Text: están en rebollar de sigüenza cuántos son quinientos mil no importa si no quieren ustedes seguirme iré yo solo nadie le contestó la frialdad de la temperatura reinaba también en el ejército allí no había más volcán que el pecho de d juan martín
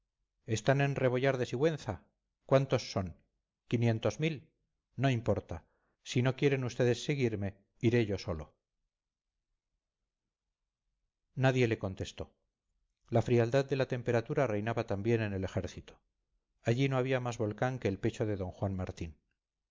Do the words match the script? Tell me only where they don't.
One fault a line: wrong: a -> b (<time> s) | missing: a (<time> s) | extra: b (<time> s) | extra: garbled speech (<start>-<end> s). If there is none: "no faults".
no faults